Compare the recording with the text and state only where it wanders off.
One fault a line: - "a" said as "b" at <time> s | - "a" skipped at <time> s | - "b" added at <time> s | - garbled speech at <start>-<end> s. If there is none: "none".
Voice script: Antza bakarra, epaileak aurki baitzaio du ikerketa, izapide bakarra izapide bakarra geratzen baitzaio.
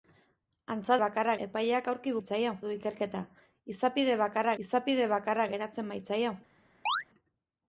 none